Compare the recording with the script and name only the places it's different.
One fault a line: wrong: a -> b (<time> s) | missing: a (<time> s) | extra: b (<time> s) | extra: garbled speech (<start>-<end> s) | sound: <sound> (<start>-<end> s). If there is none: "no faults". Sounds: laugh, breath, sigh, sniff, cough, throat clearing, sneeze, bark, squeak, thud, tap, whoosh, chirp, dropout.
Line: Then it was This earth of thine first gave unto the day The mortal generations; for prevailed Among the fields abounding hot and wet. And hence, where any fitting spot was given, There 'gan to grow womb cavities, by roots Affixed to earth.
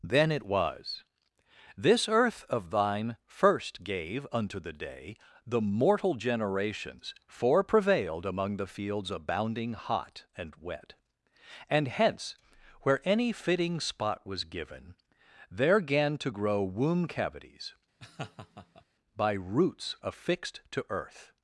sound: laugh (18.0-18.8 s)